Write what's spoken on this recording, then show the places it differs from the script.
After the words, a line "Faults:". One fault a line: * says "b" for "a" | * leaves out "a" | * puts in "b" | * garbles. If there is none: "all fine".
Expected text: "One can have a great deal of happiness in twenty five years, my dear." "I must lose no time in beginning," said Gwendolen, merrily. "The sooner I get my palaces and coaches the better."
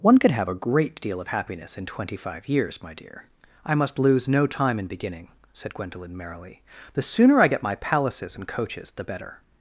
"One could have a great deal of happiness in twenty five years, my dear." "I must lose no time in beginning," said Gwendolen, merrily. "The sooner I get my palaces and coaches the better."
Faults:
* says "could" for "can"